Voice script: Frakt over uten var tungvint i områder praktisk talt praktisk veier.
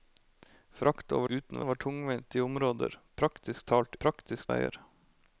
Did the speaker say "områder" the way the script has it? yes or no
yes